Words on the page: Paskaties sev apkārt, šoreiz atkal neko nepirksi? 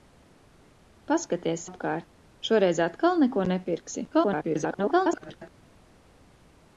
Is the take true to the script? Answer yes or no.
no